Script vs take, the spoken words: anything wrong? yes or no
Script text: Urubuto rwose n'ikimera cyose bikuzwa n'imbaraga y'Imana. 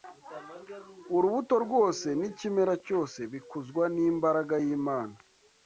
no